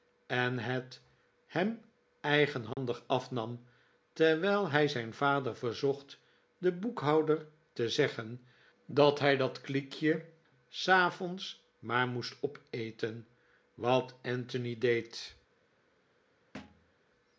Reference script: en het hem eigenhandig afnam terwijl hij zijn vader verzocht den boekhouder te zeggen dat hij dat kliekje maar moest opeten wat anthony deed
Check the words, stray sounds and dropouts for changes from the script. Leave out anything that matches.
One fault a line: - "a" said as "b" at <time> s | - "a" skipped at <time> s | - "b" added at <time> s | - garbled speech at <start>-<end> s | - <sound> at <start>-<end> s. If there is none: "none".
- dropout at 2.7-2.8 s
- "s avonds" added at 10.7 s
- thud at 16.5-16.9 s